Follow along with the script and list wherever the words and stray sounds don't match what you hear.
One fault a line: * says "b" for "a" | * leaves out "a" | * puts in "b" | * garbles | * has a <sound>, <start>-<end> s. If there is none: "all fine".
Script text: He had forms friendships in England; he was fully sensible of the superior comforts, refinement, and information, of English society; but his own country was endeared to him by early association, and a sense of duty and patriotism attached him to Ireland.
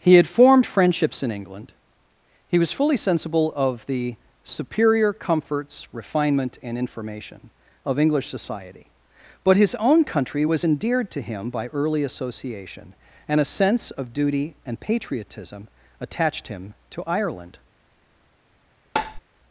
* says "formed" for "forms"
* has a tap, 19.0-19.2 s